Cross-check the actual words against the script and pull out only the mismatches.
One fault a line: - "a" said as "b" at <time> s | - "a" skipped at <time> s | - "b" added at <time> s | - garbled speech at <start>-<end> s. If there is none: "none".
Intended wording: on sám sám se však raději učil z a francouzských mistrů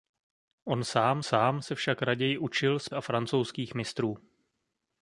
none